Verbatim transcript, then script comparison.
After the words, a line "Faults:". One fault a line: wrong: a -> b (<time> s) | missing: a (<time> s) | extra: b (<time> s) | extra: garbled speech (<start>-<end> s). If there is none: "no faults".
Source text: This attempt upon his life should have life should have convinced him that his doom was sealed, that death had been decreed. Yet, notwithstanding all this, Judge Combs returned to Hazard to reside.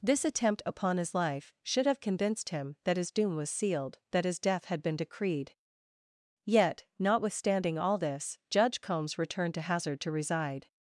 This attempt upon his life should have convinced him that his doom was sealed, that his death had been decreed. Yet, notwithstanding all this, Judge Combs returned to Hazard to reside.
Faults:
missing: life should have (2.0 s)
extra: his (4.2 s)